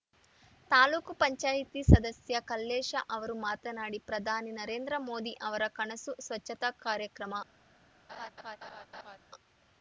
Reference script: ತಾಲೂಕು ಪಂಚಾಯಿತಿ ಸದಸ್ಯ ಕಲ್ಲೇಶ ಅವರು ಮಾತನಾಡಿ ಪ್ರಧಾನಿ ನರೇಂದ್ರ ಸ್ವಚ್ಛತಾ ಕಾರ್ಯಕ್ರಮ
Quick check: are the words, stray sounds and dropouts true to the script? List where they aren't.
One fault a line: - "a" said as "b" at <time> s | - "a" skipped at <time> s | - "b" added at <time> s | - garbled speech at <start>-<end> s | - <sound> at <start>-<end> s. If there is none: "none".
- "ಮೋದಿ ಅವರ ಕನಸು" added at 5.1 s
- laugh at 8.1-9.2 s